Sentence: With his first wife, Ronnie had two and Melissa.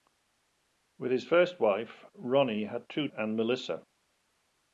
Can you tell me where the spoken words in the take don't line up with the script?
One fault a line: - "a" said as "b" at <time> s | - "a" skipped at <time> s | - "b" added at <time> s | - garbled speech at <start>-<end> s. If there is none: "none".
none